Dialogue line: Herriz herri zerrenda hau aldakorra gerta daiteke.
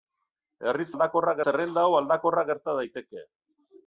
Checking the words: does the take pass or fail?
fail